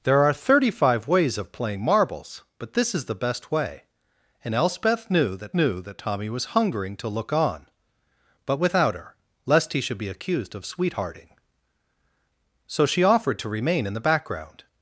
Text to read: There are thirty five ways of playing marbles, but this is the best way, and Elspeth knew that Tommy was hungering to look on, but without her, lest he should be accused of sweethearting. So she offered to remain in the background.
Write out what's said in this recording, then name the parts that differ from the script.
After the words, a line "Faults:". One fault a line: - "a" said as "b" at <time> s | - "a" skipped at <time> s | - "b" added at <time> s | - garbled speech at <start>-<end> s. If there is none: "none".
There are thirty five ways of playing marbles, but this is the best way, and Elspeth knew that knew that Tommy was hungering to look on, but without her, lest he should be accused of sweethearting. So she offered to remain in the background.
Faults:
- "knew that" added at 5.5 s